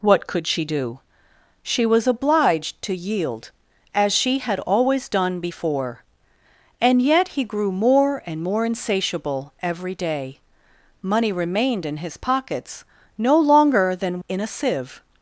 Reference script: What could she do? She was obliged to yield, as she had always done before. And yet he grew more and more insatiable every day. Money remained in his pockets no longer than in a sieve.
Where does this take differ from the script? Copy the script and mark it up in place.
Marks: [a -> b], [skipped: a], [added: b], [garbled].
What could she do? She was obliged to yield, as she had always done before. And yet he grew more and more insatiable every day. Money remained in his pockets no longer than in a sieve.